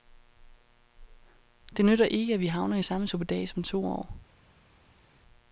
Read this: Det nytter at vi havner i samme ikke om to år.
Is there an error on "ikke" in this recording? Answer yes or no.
yes